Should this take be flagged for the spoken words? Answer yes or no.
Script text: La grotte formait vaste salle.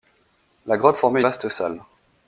no